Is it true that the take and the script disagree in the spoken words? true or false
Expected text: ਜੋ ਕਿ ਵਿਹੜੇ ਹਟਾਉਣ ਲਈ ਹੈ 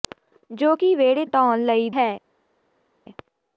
false